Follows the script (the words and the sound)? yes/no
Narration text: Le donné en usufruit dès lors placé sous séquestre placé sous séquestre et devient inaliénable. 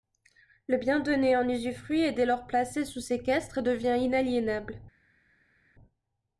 no